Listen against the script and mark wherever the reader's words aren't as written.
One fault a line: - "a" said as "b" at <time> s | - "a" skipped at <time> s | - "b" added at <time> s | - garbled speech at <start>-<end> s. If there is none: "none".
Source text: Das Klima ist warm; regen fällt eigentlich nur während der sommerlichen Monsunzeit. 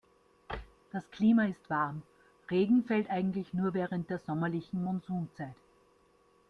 none